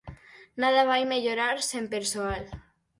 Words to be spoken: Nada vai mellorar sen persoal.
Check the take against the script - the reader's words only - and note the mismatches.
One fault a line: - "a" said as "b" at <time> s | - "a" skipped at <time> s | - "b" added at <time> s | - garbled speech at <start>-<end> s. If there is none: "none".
none